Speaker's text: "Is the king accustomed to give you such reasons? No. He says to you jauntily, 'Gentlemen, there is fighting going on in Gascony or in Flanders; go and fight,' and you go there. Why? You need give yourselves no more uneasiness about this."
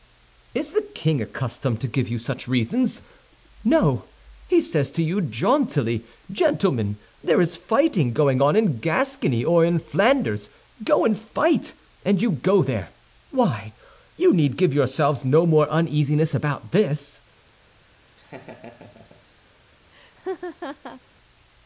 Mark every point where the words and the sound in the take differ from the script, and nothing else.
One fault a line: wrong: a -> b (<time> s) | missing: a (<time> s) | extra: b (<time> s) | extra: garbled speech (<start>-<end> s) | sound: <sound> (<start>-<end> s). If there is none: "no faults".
sound: laugh (18.2-19.3 s)
sound: laugh (19.9-21.0 s)